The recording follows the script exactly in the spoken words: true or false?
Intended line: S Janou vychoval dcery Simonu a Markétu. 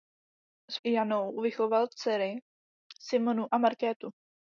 true